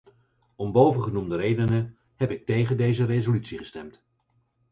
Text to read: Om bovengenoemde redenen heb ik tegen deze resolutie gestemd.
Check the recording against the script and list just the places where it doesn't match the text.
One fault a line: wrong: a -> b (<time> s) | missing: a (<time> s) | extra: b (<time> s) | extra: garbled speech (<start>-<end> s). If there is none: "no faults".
no faults